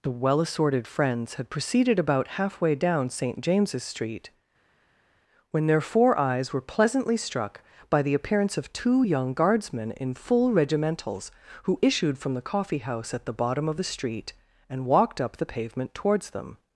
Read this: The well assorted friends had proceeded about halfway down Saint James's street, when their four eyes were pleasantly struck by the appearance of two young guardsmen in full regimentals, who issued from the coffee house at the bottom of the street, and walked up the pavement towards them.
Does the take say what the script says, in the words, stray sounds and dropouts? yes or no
yes